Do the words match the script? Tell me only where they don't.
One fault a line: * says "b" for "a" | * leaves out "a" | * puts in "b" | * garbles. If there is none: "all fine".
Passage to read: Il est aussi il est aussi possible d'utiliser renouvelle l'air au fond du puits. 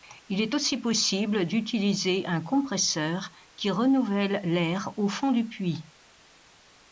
* says "possible d'utiliser un compresseur qui" for "il est aussi possible d'utiliser"